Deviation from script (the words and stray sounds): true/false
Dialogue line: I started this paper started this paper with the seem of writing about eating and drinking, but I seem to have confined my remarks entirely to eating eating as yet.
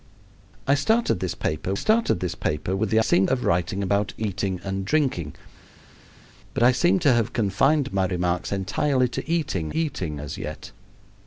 false